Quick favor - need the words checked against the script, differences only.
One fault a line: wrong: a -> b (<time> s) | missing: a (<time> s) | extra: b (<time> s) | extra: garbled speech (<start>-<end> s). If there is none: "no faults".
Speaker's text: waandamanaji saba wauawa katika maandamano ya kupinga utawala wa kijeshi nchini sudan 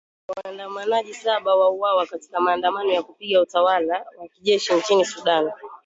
no faults